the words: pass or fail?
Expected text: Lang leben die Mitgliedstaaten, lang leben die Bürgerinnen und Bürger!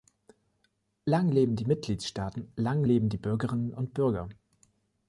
pass